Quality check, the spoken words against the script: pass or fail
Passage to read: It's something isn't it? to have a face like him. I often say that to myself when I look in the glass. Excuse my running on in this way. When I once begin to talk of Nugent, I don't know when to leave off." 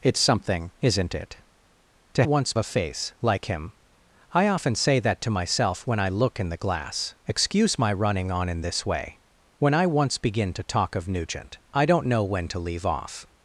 fail